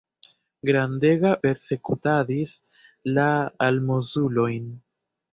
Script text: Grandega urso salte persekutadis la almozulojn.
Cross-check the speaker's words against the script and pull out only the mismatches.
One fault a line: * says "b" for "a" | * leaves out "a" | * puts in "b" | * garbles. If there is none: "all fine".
* leaves out "urso salte"